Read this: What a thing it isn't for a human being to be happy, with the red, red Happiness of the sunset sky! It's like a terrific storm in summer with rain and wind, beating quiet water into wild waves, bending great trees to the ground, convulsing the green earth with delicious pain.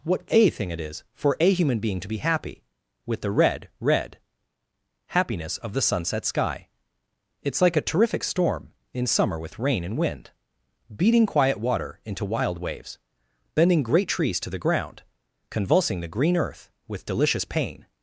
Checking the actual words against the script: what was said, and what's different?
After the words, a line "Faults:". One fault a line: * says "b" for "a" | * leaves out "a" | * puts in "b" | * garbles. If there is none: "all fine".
What a thing it is for a human being to be happy, with the red, red Happiness of the sunset sky! It's like a terrific storm in summer with rain and wind, beating quiet water into wild waves, bending great trees to the ground, convulsing the green earth with delicious pain.
Faults:
* says "is" for "isn't"